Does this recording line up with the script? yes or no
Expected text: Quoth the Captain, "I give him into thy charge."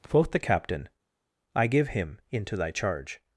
yes